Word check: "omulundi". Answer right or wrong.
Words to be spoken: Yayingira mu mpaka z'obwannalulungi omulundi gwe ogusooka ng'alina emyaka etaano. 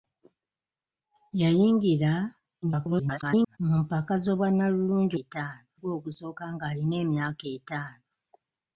wrong